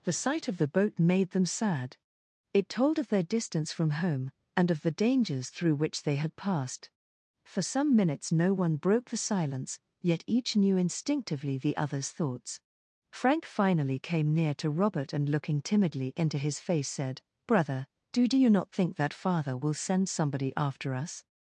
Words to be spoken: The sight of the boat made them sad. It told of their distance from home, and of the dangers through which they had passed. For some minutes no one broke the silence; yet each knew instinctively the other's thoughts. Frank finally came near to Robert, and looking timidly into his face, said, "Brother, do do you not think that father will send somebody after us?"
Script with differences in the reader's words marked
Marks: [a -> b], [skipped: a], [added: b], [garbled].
The sight of the boat made them sad. It told of their distance from home, and of the dangers through which they had passed. For some minutes no one broke the silence; yet each knew instinctively the other's thoughts. Frank finally came near to Robert, and looking timidly into his face, said, "Brother, do do you not think that father will send somebody after us?"